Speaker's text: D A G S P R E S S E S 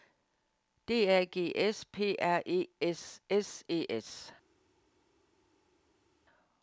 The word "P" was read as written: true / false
true